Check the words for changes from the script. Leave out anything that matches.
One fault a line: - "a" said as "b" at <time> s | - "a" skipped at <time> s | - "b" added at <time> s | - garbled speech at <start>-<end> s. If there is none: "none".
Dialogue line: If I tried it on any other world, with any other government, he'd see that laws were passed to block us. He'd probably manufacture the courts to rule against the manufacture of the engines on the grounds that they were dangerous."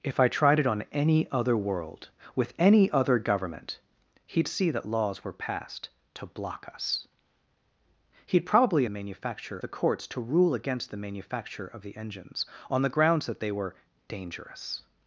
none